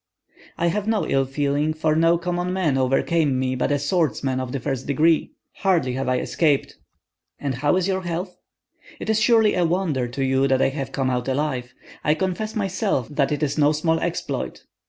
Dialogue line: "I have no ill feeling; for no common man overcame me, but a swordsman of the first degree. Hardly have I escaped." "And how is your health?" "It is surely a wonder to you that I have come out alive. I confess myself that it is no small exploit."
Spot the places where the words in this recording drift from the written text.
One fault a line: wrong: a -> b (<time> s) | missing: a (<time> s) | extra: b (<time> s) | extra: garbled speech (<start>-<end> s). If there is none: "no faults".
no faults